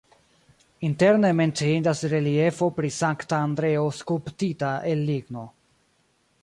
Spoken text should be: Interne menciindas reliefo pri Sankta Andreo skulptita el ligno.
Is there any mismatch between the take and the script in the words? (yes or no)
no